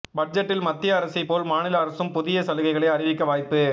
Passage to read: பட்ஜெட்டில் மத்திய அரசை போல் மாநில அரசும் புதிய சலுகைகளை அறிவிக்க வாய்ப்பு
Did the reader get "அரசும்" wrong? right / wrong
right